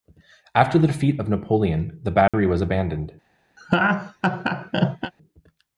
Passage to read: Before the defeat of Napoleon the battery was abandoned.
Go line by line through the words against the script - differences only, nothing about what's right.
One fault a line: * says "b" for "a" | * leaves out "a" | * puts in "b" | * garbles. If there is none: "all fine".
* says "After" for "Before"